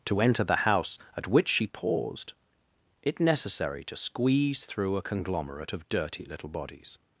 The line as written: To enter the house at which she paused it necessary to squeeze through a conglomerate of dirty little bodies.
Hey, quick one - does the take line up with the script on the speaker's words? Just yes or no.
yes